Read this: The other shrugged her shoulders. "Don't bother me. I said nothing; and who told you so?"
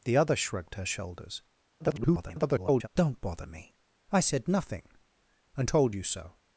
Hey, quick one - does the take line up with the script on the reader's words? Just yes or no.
no